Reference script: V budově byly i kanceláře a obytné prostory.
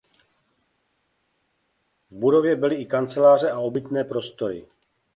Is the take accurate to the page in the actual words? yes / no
yes